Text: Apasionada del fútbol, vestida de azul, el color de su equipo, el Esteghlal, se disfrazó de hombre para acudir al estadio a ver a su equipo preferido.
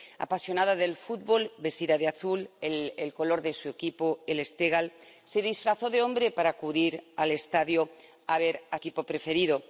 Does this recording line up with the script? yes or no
no